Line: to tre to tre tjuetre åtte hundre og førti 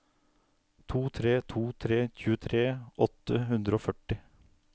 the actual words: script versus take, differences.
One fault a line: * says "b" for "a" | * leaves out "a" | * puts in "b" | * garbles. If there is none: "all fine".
all fine